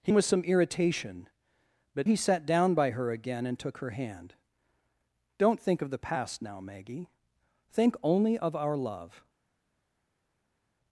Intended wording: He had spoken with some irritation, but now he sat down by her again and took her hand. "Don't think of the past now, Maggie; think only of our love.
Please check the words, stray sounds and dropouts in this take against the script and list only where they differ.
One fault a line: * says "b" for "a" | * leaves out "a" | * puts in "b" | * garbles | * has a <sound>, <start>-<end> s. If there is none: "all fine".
* leaves out "had spoken"
* leaves out "now"